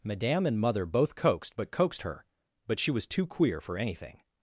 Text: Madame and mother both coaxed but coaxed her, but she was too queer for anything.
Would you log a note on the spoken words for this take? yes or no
no